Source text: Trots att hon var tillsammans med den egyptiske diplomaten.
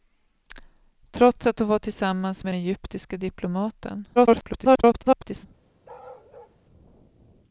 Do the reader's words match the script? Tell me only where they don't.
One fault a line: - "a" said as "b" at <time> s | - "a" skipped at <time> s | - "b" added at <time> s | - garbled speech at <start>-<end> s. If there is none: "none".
- "den" skipped at 2.5 s
- garbled speech at 4.2-5.5 s